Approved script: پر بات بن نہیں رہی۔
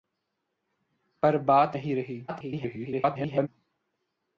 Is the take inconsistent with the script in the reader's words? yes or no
yes